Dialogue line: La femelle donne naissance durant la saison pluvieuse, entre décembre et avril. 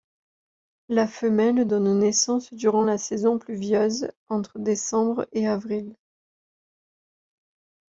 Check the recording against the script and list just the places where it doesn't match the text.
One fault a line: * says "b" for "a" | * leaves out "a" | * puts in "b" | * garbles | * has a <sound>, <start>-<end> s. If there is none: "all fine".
all fine